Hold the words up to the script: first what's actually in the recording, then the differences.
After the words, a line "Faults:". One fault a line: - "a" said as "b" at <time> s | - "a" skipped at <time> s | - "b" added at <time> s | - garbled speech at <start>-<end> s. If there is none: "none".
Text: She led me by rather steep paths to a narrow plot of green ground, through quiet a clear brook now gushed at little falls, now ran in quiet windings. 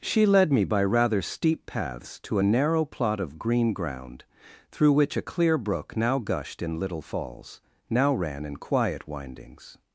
She led me by rather steep paths to a narrow plot of green ground, through which a clear brook now gushed in little falls, now ran in quiet windings.
Faults:
- "quiet" said as "which" at 4.9 s
- "at" said as "in" at 6.6 s